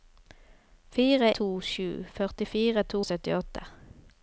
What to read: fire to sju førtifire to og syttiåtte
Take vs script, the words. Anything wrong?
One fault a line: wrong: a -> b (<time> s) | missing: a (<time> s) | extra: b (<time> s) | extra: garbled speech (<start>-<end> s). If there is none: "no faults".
no faults